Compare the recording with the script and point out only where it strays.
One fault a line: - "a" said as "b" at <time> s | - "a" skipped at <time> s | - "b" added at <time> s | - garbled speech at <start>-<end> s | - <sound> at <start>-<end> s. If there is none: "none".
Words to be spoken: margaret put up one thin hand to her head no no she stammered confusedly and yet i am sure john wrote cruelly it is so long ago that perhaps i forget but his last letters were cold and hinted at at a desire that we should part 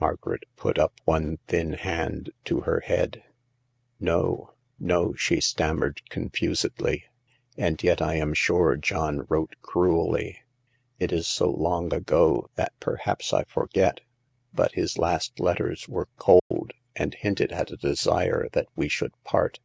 - dropout at 16.4-16.5 s
- "at" skipped at 17.7 s